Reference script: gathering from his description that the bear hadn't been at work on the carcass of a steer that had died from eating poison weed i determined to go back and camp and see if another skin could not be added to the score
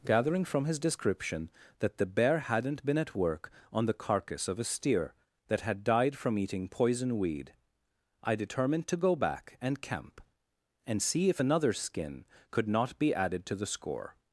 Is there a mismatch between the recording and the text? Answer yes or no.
no